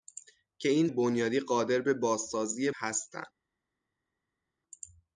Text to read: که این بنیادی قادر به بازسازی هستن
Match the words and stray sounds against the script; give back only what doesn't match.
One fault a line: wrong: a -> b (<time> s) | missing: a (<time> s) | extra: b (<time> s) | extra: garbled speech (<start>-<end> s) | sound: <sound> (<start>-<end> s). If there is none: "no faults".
no faults